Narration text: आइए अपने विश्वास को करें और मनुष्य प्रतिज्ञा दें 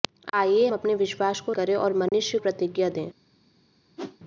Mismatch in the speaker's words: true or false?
false